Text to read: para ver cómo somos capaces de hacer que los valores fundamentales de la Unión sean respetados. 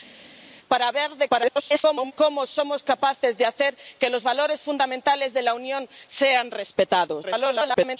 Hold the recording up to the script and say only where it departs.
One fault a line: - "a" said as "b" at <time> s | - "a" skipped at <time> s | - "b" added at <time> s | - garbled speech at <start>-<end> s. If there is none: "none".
- garbled speech at 1.3-2.1 s
- garbled speech at 7.2-8.0 s